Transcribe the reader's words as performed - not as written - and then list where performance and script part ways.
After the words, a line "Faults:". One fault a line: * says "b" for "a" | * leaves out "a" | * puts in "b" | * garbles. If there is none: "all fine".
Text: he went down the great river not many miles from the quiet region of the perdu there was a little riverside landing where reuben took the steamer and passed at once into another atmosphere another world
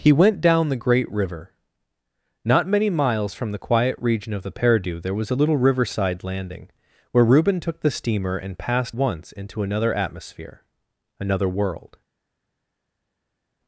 he went down the great river not many miles from the quiet region of the perdu there was a little riverside landing where reuben took the steamer and passed once into another atmosphere another world
Faults:
* leaves out "at"